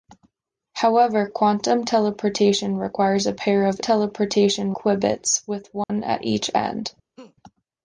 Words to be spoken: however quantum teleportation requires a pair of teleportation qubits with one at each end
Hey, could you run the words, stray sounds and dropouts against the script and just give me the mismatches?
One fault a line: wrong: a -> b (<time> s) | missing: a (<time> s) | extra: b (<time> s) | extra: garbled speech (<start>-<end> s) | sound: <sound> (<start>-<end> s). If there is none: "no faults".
sound: dropout (5.8-5.9 s)
sound: laugh (7.2-7.4 s)